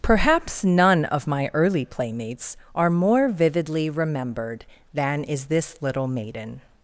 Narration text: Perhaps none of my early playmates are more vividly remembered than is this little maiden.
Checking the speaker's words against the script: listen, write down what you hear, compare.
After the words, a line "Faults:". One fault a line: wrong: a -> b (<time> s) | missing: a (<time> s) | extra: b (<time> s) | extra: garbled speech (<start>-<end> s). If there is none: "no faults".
Perhaps none of my early playmates are more vividly remembered than is this little maiden.
Faults:
no faults